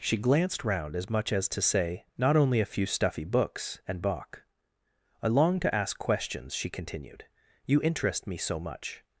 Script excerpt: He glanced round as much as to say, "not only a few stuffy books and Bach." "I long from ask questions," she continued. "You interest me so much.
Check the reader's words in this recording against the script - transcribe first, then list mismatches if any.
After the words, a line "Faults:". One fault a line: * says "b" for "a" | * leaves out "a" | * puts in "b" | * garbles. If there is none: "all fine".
She glanced round as much as to say, "not only a few stuffy books and Bach." "I long to ask questions," she continued. "You interest me so much.
Faults:
* says "She" for "He"
* says "to" for "from"